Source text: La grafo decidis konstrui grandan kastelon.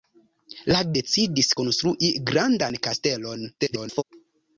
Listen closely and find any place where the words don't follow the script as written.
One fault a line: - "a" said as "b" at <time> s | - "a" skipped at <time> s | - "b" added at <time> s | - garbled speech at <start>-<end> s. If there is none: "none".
- "grafo" skipped at 0.8 s
- garbled speech at 3.6-4.0 s